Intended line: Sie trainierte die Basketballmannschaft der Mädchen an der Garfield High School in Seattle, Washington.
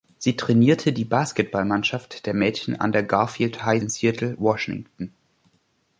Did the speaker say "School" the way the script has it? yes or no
no